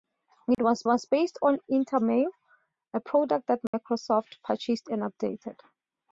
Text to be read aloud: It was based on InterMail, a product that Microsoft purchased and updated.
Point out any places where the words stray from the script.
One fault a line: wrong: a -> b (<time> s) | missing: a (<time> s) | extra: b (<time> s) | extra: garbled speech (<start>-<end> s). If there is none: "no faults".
extra: was (0.8 s)